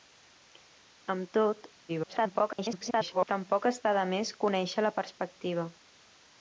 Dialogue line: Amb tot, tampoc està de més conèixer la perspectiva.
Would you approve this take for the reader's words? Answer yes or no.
no